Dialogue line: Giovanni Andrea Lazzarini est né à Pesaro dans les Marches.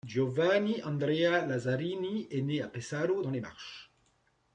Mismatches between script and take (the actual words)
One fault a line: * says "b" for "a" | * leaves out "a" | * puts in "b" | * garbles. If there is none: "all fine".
all fine